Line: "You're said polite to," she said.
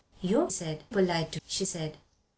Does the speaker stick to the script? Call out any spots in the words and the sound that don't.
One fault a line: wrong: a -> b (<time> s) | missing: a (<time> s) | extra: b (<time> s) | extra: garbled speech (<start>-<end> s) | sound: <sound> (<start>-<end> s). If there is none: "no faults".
no faults